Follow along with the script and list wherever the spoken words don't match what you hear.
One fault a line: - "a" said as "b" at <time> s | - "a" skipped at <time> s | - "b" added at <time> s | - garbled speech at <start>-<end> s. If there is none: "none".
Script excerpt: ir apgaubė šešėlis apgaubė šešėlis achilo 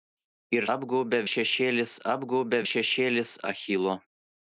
none